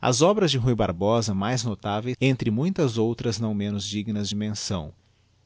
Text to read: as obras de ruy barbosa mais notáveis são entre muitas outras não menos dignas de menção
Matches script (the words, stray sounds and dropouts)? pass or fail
fail